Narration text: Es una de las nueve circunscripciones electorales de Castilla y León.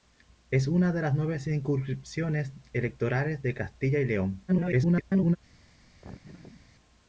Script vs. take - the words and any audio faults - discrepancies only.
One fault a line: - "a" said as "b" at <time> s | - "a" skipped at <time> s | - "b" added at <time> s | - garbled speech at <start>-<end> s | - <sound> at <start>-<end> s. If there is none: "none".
- garbled speech at 4.5-5.4 s
- laugh at 6.0-6.7 s